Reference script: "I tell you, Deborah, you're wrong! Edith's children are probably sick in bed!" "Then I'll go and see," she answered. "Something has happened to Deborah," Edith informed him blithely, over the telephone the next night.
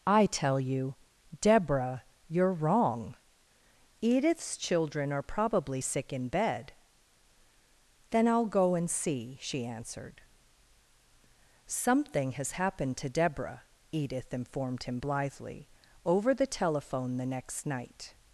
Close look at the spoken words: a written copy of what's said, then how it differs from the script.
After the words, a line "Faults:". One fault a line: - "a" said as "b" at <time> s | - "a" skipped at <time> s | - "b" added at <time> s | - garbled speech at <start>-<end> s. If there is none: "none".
"I tell you, Deborah, you're wrong! Edith's children are probably sick in bed!" "Then I'll go and see," she answered. "Something has happened to Deborah," Edith informed him blithely, over the telephone the next night.
Faults:
none